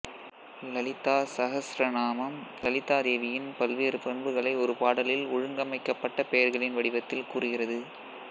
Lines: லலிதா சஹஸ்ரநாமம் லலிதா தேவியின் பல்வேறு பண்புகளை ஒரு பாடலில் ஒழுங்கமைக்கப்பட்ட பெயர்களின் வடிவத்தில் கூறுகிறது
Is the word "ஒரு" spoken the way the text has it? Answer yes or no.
yes